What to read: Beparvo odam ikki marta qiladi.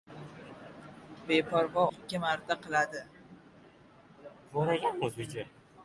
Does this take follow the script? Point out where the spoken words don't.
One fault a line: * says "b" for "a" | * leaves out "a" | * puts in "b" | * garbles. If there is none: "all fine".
* leaves out "odam"